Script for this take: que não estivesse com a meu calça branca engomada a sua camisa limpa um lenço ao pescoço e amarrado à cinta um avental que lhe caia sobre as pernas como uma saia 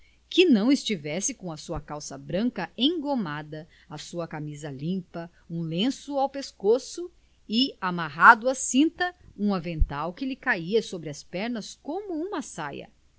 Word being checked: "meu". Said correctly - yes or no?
no